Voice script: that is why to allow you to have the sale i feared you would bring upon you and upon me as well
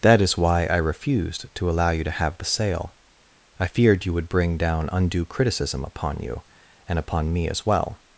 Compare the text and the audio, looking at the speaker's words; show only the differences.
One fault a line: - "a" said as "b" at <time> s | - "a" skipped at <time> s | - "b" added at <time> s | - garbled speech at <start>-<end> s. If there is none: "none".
- "i refused" added at 0.7 s
- "down undue criticism" added at 4.6 s